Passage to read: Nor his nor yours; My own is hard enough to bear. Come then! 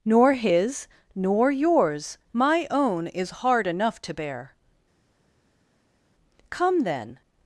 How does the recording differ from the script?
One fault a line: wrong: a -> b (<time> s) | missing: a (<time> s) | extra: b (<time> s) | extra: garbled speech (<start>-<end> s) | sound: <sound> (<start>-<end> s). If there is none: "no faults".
no faults